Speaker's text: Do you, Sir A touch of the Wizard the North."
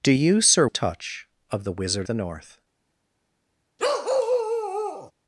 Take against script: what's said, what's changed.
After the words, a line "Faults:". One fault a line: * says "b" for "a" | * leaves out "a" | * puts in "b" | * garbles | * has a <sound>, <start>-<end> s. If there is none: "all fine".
Do you, Sir A touch of the Wizard the North."
Faults:
* has a bark, 3.8-5.1 s